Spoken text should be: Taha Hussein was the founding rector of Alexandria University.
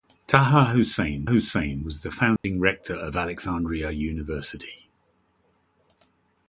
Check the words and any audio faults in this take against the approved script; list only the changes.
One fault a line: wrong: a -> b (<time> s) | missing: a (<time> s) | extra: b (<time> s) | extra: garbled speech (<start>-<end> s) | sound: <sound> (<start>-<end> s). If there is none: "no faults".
extra: Hussein (1.3 s)
sound: dropout (2.4-2.4 s)